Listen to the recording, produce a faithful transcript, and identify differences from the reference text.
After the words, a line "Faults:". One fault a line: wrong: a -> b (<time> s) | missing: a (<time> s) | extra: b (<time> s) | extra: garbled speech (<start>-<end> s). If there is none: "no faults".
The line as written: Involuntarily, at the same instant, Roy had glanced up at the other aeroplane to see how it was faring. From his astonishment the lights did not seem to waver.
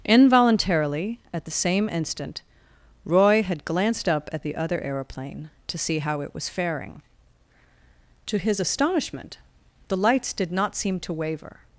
Involuntarily, at the same instant, Roy had glanced up at the other aeroplane to see how it was faring. To his astonishment the lights did not seem to waver.
Faults:
wrong: From -> To (8.3 s)